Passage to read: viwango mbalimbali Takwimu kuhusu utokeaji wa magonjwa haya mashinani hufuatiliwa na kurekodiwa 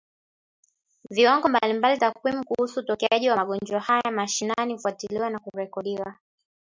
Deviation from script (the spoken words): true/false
false